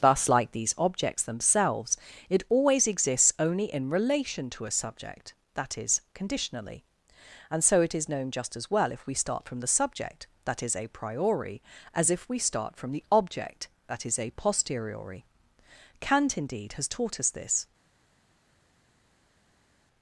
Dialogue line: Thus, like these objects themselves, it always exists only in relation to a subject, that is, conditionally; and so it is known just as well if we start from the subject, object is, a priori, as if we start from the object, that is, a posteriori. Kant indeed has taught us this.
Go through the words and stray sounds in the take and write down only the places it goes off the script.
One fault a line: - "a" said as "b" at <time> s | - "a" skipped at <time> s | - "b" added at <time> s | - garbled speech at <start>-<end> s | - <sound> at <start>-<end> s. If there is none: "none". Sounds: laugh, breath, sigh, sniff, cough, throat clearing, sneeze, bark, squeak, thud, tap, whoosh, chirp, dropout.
- "object" said as "that" at 10.5 s